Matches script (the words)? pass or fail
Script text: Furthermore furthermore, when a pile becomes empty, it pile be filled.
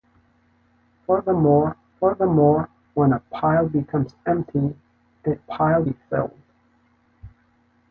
pass